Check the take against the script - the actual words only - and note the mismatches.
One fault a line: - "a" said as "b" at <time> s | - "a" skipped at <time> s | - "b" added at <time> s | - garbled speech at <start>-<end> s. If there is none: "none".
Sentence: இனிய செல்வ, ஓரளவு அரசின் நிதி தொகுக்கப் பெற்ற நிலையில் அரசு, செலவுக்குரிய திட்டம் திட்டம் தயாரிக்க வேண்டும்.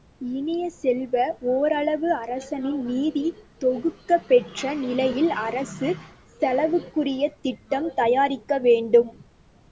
- "திட்டம்" skipped at 7.9 s